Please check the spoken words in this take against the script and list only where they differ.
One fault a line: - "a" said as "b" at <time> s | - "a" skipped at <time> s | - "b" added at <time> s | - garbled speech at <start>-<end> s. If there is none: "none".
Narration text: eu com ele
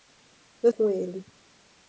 none